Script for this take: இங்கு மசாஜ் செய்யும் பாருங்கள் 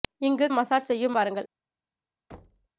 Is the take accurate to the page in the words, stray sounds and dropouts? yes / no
no